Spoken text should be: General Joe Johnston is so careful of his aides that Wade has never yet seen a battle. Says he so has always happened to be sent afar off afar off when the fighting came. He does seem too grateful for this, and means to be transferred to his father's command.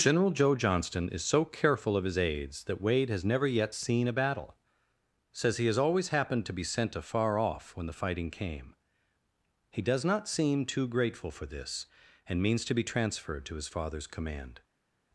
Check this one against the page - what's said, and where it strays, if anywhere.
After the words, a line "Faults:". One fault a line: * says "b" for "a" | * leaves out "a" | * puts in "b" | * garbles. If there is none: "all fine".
General Joe Johnston is so careful of his aides that Wade has never yet seen a battle. Says he has always happened to be sent afar off when the fighting came. He does not seem too grateful for this, and means to be transferred to his father's command.
Faults:
* leaves out "so"
* leaves out "afar off"
* puts in "not"